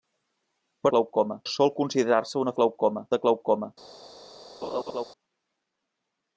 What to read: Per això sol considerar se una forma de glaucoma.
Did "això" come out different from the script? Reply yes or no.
yes